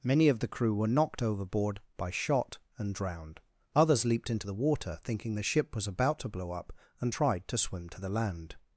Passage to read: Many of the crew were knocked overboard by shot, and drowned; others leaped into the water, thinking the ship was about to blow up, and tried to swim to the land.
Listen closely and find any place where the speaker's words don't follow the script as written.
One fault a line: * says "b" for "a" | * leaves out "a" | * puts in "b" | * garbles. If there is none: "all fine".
all fine